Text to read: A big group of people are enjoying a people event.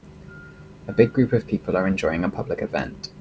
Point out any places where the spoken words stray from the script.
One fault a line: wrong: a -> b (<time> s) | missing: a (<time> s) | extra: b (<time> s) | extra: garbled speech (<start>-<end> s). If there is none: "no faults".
wrong: people -> public (2.3 s)